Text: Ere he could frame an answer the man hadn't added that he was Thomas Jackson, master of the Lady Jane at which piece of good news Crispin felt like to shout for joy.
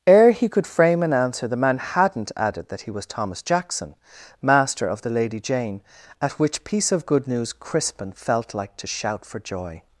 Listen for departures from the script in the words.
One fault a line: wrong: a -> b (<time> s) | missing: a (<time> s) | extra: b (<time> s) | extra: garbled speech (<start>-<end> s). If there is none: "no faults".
no faults